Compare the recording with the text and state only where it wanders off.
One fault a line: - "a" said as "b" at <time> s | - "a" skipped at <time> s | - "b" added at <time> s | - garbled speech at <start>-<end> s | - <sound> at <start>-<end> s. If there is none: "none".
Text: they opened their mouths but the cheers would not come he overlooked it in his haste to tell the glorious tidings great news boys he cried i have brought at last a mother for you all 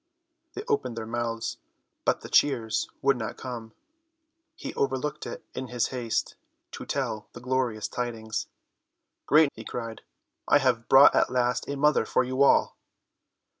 - "news boys" skipped at 9.5 s